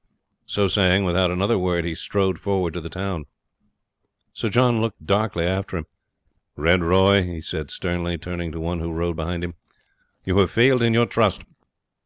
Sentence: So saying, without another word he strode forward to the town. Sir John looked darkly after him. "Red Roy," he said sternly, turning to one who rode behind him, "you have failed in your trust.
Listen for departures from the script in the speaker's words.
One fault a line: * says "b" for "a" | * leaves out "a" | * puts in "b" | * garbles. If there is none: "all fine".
all fine